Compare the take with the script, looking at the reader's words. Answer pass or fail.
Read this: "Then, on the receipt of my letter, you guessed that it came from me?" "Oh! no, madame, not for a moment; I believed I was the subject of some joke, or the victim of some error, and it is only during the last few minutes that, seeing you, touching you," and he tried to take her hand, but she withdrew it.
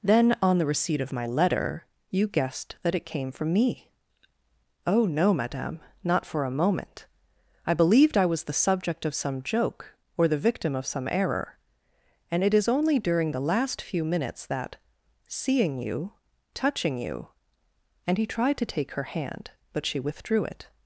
pass